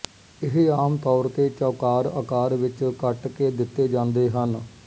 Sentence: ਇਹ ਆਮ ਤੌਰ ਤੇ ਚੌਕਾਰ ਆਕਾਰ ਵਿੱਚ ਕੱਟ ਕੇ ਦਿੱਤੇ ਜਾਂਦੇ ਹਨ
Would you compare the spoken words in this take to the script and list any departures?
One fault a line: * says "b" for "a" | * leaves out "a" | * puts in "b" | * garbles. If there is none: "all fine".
all fine